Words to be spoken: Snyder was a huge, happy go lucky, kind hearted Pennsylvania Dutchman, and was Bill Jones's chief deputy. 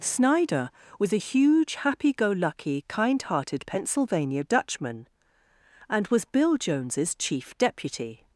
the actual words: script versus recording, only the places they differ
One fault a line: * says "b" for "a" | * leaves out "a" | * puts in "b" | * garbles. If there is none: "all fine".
all fine